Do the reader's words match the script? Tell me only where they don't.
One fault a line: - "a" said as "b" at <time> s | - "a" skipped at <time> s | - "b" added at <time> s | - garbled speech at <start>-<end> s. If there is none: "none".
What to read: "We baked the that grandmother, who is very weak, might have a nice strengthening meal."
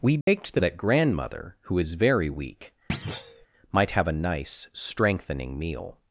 none